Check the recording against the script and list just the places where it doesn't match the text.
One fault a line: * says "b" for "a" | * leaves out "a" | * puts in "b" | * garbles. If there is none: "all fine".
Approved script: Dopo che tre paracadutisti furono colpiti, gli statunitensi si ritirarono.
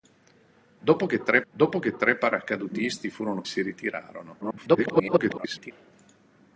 * says "dopo che tre paracadutisti furono" for "paracadutisti furono colpiti gli statunitensi"
* garbles